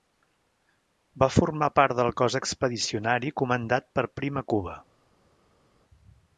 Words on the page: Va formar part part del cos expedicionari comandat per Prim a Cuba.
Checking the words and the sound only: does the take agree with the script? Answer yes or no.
no